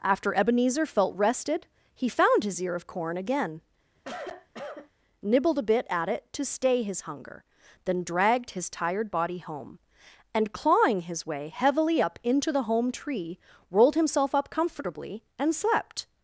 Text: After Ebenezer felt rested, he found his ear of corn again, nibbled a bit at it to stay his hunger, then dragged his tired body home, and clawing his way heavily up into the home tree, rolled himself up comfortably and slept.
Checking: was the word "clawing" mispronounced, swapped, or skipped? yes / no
no